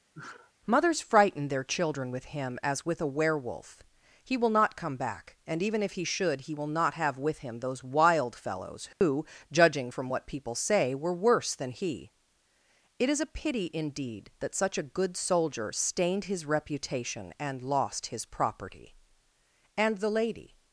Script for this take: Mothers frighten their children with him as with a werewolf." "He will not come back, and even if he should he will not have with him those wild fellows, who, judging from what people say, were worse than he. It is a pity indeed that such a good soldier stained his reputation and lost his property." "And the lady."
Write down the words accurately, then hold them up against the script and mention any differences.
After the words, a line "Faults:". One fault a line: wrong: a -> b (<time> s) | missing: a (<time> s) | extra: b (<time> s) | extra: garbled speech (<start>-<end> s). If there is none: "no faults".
Mothers frighten their children with him as with a werewolf." "He will not come back, and even if he should he will not have with him those wild fellows, who, judging from what people say, were worse than he. It is a pity indeed that such a good soldier stained his reputation and lost his property." "And the lady."
Faults:
no faults